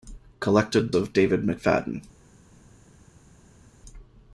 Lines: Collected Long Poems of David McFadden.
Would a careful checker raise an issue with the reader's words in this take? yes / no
yes